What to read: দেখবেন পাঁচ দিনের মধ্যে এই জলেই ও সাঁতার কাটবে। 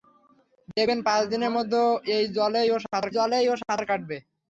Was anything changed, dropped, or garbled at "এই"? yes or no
no